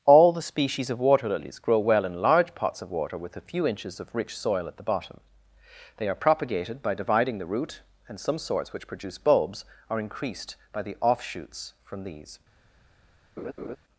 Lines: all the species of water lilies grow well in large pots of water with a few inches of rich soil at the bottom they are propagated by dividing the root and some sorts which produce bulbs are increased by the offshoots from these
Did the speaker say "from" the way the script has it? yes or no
yes